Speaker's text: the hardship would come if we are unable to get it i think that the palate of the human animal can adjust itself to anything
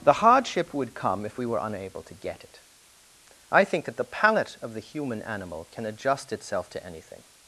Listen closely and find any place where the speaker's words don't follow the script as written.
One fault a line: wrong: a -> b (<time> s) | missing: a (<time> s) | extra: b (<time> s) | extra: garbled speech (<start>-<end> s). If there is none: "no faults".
wrong: are -> were (1.4 s)